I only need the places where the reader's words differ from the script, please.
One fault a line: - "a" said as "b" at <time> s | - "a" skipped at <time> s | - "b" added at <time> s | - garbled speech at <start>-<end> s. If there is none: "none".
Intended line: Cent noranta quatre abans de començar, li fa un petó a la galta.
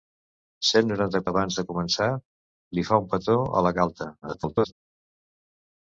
- "quatre" skipped at 1.2 s
- garbled speech at 4.2-4.7 s